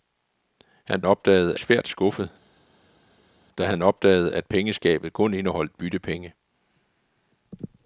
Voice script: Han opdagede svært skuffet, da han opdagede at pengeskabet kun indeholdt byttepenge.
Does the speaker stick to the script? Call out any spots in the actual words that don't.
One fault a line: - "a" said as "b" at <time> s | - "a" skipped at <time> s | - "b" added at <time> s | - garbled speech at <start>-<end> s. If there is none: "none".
none